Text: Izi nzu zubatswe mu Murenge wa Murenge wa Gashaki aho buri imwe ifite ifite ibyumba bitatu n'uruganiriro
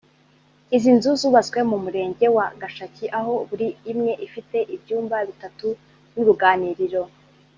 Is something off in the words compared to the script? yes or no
yes